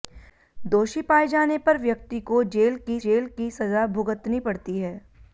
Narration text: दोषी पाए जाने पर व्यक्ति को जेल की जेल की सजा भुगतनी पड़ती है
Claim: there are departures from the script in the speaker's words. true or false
false